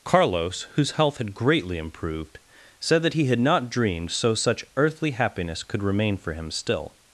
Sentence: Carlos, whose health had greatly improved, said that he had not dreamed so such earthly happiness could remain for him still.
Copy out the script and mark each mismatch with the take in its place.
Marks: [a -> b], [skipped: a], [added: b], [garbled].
Carlos, whose health had greatly improved, said that he had not dreamed so such earthly happiness could remain for him still.